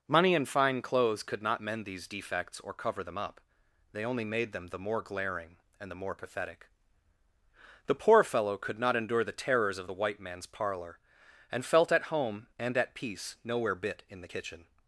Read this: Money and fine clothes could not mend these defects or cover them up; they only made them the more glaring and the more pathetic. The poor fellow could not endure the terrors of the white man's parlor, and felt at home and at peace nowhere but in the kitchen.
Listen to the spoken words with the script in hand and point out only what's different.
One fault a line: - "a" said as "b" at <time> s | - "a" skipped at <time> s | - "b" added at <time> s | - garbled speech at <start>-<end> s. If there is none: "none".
- "but" said as "bit" at 13.7 s